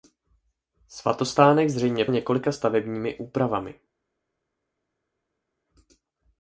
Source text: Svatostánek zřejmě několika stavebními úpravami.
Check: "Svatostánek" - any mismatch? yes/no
no